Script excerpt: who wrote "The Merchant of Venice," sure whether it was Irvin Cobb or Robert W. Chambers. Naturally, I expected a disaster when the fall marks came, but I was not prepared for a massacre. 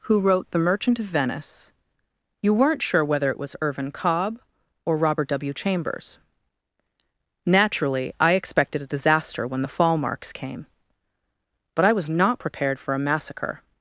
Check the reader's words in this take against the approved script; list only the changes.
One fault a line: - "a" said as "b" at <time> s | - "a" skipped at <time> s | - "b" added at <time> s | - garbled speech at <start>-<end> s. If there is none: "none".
- "you weren't" added at 2.4 s